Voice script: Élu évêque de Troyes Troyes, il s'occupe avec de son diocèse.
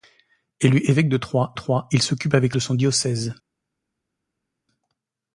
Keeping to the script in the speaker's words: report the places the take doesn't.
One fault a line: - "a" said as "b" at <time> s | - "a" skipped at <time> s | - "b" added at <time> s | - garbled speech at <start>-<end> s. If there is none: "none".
none